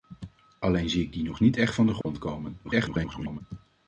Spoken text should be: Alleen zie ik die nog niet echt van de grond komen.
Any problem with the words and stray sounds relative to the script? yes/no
yes